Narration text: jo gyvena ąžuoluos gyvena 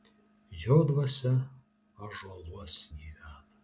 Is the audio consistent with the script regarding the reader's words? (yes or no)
no